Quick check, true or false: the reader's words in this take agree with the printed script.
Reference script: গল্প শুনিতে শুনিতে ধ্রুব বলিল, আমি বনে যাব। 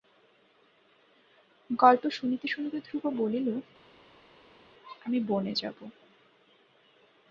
true